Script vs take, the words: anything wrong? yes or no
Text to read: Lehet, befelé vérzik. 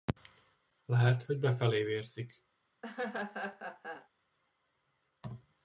yes